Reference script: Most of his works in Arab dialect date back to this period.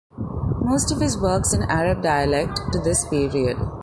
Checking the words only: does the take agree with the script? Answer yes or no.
no